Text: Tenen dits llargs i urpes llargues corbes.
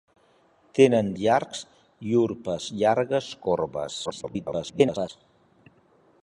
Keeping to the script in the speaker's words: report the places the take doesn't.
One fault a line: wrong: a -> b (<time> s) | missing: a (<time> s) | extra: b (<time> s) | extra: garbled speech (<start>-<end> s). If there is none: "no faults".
missing: dits (1.1 s)
extra: garbled speech (4.0-5.1 s)